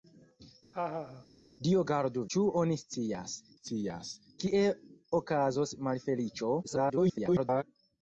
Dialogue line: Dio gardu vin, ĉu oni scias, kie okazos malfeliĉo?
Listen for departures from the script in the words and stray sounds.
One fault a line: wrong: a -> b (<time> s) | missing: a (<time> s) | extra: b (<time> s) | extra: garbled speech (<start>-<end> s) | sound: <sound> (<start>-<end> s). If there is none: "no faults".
sound: laugh (0.7-1.3 s)
missing: vin (2.2 s)
extra: scias (3.6 s)
extra: garbled speech (6.6-7.6 s)